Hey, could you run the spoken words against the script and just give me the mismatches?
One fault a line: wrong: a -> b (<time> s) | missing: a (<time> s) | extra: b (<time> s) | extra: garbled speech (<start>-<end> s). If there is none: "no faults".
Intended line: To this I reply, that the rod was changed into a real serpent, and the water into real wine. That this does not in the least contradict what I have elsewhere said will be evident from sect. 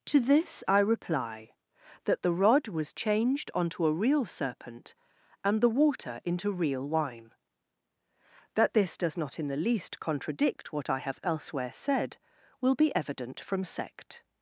wrong: into -> onto (3.5 s)